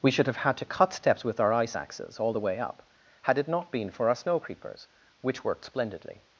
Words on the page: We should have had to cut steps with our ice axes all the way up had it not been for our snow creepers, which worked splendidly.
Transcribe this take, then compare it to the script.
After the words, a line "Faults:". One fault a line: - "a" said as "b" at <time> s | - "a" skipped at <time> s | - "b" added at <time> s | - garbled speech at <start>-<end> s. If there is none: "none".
We should have had to cut steps with our ice axes all the way up had it not been for our snow creepers, which worked splendidly.
Faults:
none